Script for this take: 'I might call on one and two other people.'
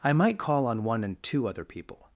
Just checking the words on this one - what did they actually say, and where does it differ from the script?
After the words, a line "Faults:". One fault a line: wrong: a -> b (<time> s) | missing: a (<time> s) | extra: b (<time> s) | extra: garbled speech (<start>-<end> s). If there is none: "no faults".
'I might call on one and two other people.'
Faults:
no faults